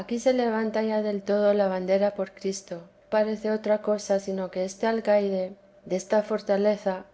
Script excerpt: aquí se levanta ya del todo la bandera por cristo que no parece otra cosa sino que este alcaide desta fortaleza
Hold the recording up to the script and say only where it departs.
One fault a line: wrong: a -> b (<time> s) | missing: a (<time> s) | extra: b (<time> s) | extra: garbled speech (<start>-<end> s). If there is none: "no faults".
missing: que no (2.8 s)